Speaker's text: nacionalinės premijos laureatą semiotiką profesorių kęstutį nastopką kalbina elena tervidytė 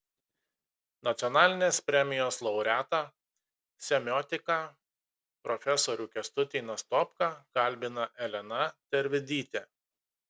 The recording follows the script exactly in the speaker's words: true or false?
true